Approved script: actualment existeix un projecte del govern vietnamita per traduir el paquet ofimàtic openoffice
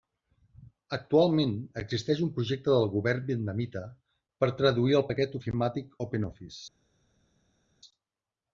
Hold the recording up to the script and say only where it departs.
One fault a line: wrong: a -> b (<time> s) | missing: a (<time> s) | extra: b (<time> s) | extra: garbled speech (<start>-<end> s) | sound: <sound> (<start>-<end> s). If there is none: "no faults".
no faults